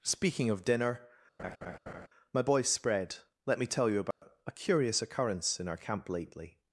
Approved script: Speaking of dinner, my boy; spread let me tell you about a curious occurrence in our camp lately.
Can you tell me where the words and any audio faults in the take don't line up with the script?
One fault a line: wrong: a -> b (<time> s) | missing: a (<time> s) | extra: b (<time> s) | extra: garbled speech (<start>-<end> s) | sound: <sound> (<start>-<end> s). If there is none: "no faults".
sound: laugh (1.4-2.1 s)
sound: dropout (4.1-4.2 s)